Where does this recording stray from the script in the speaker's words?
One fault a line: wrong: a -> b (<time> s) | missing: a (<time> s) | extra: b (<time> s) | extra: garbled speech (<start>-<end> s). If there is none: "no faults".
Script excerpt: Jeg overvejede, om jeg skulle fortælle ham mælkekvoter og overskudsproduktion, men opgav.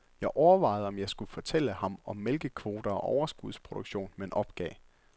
extra: om (2.0 s)